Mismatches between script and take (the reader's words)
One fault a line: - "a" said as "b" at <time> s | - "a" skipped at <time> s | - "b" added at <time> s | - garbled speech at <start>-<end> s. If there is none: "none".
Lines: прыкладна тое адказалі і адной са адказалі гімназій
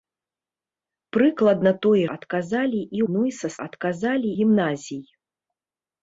none